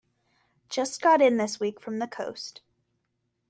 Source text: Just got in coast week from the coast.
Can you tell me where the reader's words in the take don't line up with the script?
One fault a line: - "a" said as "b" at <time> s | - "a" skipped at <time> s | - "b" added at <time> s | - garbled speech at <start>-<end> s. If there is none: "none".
- "coast" said as "this" at 1.4 s